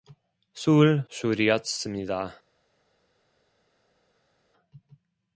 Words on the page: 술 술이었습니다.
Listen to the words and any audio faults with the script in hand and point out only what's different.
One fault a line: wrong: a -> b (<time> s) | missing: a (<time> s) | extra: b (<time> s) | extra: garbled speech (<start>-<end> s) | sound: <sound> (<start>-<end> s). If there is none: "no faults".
no faults